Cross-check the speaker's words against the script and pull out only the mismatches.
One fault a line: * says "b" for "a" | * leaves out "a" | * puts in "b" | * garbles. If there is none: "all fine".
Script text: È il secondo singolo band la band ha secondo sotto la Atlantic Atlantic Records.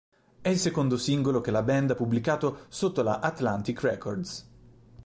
* says "che" for "band"
* says "pubblicato" for "secondo"
* leaves out "Atlantic"